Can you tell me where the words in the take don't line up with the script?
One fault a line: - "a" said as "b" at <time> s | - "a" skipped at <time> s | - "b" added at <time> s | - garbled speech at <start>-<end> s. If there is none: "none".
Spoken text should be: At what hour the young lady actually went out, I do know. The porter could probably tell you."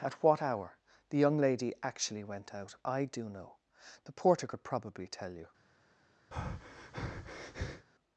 none